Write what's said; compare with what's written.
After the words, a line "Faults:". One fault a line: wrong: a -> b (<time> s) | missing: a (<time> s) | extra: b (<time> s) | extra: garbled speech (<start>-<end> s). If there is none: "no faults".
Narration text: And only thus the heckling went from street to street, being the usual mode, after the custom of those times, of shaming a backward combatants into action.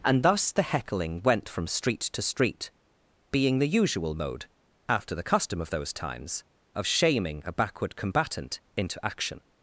And thus the heckling went from street to street, being the usual mode, after the custom of those times, of shaming a backward combatant into action.
Faults:
missing: only (0.2 s)
wrong: combatants -> combatant (7.9 s)